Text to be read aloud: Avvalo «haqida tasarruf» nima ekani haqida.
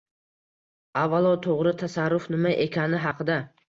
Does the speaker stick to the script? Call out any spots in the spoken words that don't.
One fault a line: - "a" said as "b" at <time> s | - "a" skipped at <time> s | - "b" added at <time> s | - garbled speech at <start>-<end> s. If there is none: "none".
- "haqida" said as "to‘g‘ri" at 1.5 s